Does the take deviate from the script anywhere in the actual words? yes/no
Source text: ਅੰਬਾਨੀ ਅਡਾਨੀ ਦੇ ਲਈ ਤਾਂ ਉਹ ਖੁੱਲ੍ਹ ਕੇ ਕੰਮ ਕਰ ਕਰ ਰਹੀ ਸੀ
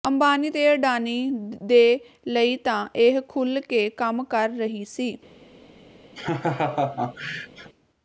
yes